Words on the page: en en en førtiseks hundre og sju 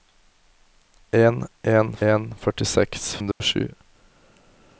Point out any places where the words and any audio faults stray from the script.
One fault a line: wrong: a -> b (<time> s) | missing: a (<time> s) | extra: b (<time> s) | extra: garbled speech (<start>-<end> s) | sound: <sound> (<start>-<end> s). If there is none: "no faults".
sound: dropout (3.3-3.4 s)